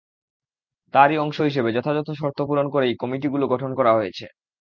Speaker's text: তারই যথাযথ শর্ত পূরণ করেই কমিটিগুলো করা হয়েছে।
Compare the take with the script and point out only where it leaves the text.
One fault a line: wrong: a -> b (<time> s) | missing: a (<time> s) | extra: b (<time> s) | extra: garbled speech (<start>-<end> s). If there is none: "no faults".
extra: অংশ হিসেবে (1.2 s)
extra: গঠন (3.5 s)